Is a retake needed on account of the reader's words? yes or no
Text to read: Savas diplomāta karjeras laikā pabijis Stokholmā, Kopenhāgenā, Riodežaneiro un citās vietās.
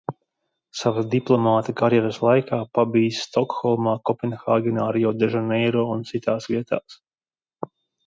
no